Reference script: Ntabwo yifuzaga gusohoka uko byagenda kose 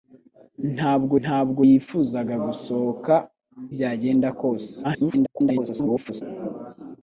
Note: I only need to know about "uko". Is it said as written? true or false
false